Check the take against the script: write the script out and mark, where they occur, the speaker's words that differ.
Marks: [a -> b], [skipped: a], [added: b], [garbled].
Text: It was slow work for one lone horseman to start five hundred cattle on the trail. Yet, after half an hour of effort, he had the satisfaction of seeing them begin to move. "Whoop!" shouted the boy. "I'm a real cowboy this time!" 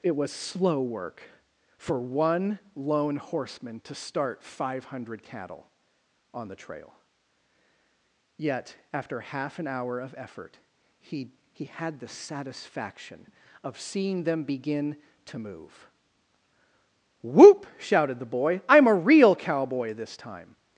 It was slow work for one lone horseman to start five hundred cattle on the trail. Yet, after half an hour of effort, he [added: he] had the satisfaction of seeing them begin to move. "Whoop!" shouted the boy. "I'm a real cowboy this time!"